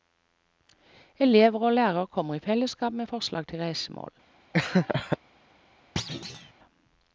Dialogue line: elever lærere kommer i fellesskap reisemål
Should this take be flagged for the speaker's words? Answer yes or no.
yes